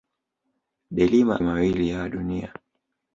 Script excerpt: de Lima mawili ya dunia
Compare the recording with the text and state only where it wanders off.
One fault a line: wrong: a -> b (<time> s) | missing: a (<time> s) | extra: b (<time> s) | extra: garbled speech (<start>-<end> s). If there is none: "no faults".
no faults